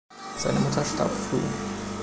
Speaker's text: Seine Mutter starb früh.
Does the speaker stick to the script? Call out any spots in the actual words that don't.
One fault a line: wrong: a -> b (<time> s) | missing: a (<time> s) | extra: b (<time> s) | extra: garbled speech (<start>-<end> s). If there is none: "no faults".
no faults